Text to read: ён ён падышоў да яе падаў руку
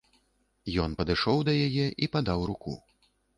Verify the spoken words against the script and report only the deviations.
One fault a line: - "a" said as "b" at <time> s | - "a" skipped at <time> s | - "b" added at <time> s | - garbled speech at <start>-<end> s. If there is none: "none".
- "ён" skipped at 0.9 s
- "і" added at 2.0 s